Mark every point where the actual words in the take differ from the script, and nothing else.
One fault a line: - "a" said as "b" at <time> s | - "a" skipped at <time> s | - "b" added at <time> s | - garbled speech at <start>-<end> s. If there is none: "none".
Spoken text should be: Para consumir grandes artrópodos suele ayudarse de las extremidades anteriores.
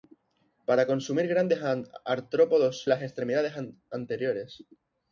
- "suele ayudarse" skipped at 2.8 s